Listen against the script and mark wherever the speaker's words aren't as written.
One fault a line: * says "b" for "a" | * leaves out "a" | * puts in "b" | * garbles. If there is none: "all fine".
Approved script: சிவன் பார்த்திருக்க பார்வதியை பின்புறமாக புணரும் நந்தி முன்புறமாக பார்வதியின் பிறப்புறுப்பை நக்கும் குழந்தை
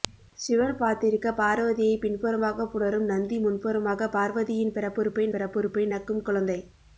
* puts in "பிறப்புறுப்பை"